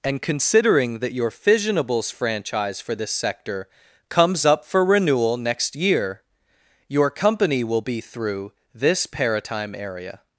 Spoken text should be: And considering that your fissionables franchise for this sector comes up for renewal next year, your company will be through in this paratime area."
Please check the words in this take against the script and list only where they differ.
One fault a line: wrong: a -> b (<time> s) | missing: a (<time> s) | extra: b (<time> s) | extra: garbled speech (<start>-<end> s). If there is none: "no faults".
missing: in (8.5 s)